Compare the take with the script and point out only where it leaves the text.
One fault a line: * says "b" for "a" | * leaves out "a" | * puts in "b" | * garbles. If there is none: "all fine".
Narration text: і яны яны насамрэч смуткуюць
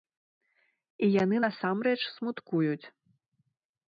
* leaves out "яны"